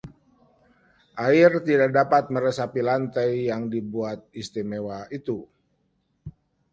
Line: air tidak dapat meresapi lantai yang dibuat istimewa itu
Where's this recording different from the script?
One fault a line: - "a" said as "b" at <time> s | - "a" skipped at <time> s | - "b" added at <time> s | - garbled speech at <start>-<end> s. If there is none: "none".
none